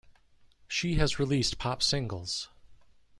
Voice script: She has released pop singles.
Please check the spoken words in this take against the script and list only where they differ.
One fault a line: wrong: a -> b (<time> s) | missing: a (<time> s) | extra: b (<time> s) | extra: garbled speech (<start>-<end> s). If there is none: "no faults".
no faults